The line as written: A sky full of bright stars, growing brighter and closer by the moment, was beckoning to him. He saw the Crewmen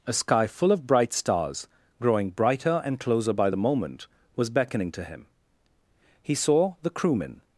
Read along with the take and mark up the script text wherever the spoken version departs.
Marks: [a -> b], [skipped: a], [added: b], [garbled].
A sky full of bright stars, growing brighter and closer by the moment, was beckoning to him. He saw the Crewmen